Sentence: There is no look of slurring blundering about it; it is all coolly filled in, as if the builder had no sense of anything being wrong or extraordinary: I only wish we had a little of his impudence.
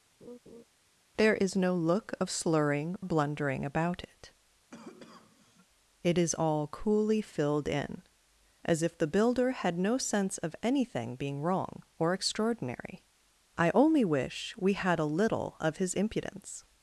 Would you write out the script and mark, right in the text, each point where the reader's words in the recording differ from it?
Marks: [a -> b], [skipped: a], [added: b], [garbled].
There is no look of slurring blundering about it; it is all coolly filled in, as if the builder had no sense of anything being wrong or extraordinary: I only wish we had a little of his impudence.